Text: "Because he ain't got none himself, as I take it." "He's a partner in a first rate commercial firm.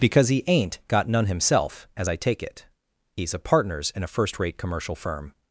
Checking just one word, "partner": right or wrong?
wrong